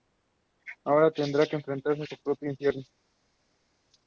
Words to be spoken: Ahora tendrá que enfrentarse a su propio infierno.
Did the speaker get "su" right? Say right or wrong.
right